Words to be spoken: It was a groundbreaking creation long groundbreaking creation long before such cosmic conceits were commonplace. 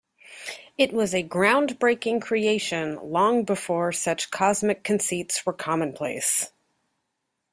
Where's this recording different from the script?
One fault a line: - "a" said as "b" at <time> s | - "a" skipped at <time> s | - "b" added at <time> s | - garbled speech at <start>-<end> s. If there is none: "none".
- "groundbreaking creation long" skipped at 3.4 s